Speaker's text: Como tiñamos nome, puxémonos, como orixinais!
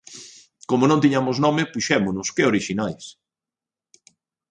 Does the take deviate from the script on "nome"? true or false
false